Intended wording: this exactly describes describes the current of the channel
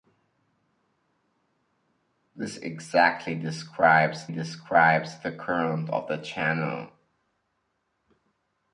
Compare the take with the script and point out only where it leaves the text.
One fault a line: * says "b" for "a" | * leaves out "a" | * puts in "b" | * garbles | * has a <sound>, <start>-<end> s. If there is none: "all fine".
all fine